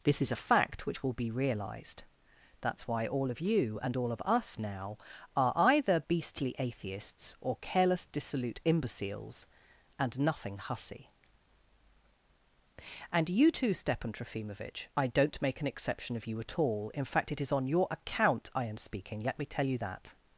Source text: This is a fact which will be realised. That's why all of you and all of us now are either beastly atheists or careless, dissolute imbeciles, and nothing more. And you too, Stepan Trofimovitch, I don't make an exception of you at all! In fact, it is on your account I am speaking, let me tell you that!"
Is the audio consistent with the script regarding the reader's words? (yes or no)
no